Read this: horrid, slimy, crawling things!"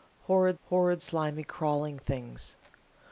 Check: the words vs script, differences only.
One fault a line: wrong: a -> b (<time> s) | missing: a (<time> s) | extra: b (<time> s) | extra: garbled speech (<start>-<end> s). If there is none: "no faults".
extra: horrid (0.6 s)